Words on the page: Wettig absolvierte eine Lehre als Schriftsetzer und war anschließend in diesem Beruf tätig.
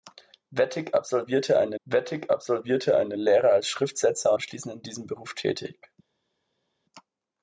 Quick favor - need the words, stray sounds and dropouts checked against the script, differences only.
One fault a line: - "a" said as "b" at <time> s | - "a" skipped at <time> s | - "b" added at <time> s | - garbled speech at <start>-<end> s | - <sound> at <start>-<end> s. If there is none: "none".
- "wettig absolvierte eine" added at 1.8 s
- "und war" skipped at 4.3 s